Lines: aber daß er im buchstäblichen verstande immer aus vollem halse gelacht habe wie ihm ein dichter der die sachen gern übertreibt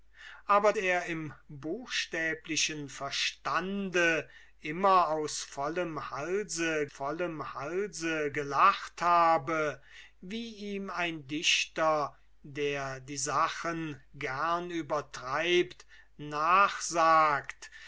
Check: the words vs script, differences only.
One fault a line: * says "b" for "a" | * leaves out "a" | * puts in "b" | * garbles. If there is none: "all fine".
* leaves out "daß"
* puts in "vollem halse"